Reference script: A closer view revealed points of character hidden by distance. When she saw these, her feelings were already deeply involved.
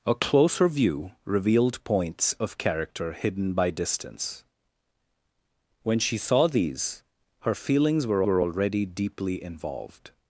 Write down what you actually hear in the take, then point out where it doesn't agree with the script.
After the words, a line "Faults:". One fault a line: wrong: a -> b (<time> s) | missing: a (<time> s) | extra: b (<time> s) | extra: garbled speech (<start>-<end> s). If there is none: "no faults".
A closer view revealed points of character hidden by distance. When she saw these, her feelings were were already deeply involved.
Faults:
extra: were (8.2 s)